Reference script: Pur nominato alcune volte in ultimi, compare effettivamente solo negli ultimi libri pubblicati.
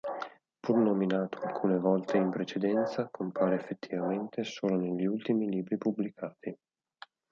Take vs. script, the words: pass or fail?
fail